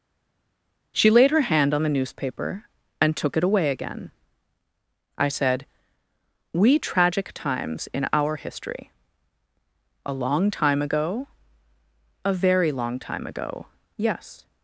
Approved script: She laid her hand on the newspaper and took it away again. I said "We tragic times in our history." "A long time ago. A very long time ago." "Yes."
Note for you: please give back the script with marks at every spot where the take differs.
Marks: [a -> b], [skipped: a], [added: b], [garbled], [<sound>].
She laid her hand on the newspaper and took it away again. I said "We tragic times in our history." "A long time ago. A very long time ago." "Yes."